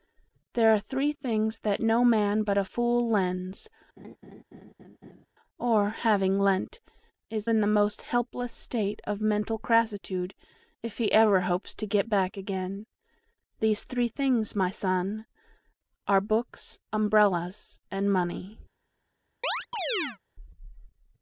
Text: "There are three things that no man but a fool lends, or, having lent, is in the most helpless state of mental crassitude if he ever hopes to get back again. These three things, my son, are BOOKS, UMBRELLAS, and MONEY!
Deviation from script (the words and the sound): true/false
true